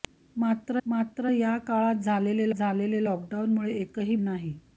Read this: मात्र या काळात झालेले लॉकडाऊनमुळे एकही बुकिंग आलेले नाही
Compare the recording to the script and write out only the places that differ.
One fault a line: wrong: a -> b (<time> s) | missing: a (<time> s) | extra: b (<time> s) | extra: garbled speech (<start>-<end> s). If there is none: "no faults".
extra: मात्र (0.8 s)
extra: झालेले (2.5 s)
missing: बुकिंग आलेले (4.1 s)